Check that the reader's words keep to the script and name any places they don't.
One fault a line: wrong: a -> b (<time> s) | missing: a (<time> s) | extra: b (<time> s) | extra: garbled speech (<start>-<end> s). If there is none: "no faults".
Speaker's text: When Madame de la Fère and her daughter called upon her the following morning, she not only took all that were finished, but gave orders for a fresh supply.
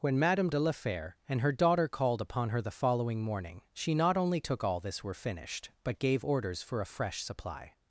wrong: that -> this (4.8 s)